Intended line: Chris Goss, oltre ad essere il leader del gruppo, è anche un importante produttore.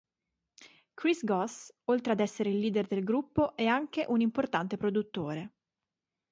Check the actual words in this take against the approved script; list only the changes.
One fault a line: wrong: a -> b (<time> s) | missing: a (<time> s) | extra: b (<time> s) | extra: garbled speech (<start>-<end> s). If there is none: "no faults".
no faults